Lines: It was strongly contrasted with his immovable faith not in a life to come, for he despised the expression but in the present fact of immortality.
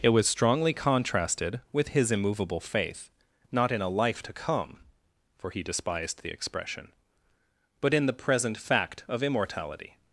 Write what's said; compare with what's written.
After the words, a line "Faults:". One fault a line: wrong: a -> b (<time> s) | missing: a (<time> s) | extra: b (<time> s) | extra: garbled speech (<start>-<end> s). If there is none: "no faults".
It was strongly contrasted with his immovable faith not in a life to come, for he despised the expression but in the present fact of immortality.
Faults:
no faults